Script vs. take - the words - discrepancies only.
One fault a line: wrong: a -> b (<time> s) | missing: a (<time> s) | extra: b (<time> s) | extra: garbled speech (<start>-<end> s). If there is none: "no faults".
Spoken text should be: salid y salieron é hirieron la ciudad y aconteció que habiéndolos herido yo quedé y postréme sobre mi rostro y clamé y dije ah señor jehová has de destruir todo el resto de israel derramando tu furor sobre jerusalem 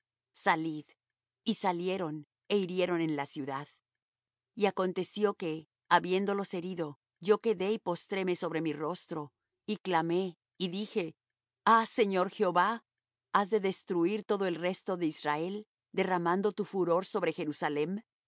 extra: en (3.0 s)